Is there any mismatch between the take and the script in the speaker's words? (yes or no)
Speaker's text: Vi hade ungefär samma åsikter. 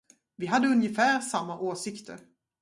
no